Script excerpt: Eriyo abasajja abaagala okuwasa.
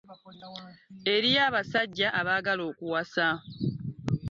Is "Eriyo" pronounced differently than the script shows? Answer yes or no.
no